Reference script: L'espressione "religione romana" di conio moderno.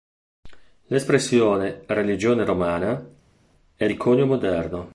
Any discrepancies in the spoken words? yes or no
yes